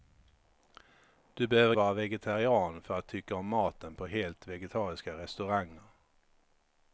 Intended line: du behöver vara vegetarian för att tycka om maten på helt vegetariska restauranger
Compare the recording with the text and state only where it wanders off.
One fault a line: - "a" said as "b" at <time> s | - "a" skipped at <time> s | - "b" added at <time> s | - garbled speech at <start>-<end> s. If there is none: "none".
none